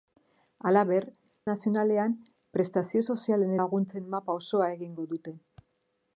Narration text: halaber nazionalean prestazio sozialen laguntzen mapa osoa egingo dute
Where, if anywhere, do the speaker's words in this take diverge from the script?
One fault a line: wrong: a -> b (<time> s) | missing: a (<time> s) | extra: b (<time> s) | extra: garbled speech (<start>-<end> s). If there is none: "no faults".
no faults